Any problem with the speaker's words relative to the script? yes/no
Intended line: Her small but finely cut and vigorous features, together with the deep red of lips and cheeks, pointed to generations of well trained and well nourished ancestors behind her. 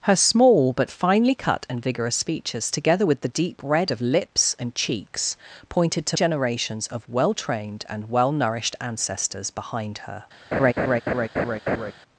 no